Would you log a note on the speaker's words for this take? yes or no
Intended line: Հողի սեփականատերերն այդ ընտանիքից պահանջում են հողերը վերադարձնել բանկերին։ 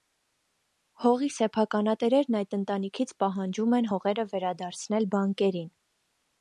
no